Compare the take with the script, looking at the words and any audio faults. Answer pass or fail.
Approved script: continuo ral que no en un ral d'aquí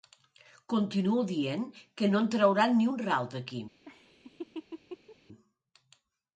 fail